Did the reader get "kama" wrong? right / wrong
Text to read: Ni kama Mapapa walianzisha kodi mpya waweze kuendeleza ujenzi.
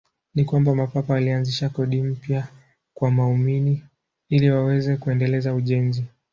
wrong